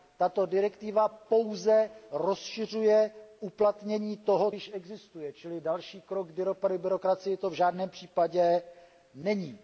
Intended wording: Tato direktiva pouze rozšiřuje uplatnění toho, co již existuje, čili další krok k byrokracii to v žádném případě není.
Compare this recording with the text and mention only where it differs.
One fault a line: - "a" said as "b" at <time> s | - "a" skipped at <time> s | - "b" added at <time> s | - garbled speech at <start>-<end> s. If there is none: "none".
- "co" skipped at 4.5 s